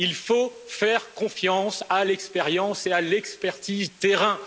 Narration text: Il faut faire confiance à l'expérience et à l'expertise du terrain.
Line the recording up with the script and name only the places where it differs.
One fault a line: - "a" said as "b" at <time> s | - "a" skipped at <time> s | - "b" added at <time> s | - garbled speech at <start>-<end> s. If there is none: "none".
- "du" skipped at 3.9 s